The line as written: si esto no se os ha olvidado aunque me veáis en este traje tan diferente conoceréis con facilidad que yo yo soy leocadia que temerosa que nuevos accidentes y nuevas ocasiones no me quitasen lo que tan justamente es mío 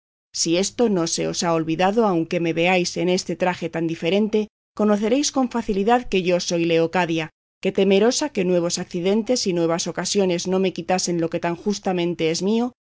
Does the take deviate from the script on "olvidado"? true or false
false